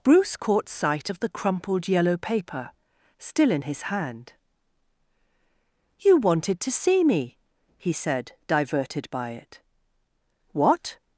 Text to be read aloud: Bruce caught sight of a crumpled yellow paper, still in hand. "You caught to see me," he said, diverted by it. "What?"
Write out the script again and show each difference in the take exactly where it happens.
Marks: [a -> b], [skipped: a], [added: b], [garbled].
Bruce caught sight of [a -> the] crumpled yellow paper, still in [added: his] hand. "You [caught -> wanted] to see me," he said, diverted by it. "What?"